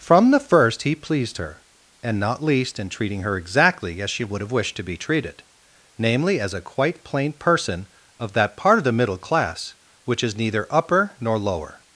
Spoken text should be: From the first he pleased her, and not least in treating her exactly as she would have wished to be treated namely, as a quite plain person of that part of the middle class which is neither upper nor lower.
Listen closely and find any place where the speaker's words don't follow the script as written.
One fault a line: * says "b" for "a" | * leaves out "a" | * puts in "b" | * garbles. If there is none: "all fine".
all fine